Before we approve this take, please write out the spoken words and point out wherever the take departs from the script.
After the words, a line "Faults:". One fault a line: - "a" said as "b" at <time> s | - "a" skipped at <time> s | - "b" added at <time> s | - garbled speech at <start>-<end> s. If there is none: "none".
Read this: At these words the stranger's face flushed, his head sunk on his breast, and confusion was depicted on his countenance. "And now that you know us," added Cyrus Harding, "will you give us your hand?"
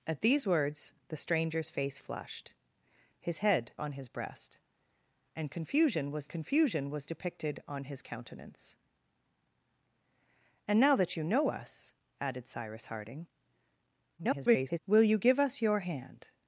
At these words the stranger's face flushed, his head on his breast, and confusion was confusion was depicted on his countenance. "And now that you know us," added Cyrus Harding, [garbled] "will you give us your hand?"
Faults:
- "sunk" skipped at 3.7 s
- "confusion was" added at 6.3 s
- garbled speech at 14.2-14.8 s